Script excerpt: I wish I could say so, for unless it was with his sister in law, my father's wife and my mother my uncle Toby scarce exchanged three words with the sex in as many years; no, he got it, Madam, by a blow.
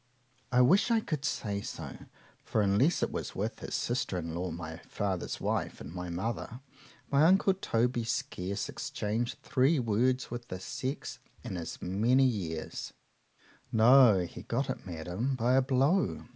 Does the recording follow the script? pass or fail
pass